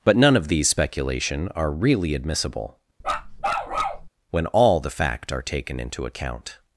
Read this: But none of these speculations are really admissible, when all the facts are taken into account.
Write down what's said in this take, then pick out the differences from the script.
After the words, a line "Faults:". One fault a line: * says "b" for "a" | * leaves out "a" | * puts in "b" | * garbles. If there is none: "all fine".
But none of these speculation are really admissible, when all the fact are taken into account.
Faults:
* says "speculation" for "speculations"
* says "fact" for "facts"